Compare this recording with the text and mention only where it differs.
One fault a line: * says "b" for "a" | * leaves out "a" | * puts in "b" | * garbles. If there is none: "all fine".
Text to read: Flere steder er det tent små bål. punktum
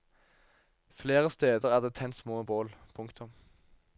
all fine